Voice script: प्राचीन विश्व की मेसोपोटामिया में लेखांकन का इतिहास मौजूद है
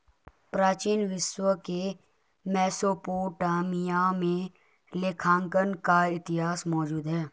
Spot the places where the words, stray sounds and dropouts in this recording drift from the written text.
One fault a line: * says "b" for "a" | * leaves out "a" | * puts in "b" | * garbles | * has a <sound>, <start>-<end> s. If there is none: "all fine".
* says "के" for "की"